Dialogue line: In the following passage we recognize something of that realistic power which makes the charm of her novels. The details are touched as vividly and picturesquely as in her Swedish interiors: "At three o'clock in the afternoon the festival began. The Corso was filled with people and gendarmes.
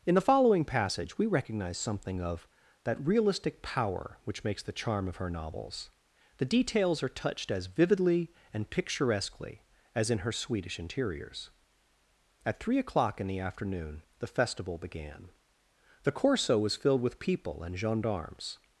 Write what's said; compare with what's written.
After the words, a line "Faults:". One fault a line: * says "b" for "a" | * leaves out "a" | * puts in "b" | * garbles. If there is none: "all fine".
In the following passage we recognize something of that realistic power which makes the charm of her novels. The details are touched as vividly and picturesquely as in her Swedish interiors: "At three o'clock in the afternoon the festival began. The Corso was filled with people and gendarmes.
Faults:
all fine